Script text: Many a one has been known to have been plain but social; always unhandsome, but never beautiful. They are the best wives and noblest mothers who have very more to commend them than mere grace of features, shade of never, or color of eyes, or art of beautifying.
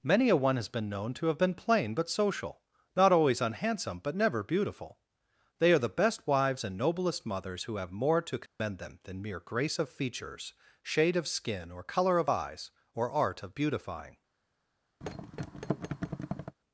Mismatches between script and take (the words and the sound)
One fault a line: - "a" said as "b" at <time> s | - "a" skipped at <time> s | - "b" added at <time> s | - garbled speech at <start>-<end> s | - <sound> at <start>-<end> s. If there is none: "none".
- "not" added at 3.0 s
- "very" skipped at 7.9 s
- dropout at 8.5-8.6 s
- "never" said as "skin" at 11.3 s
- thud at 15.0-16.6 s